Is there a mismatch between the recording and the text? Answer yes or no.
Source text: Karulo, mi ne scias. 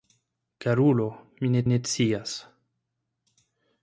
yes